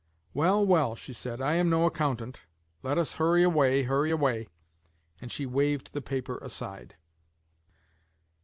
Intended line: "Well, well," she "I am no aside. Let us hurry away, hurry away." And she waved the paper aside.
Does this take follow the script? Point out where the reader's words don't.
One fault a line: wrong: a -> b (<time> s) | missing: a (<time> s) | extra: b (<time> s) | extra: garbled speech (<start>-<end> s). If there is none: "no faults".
extra: said (1.1 s)
wrong: aside -> accountant (1.9 s)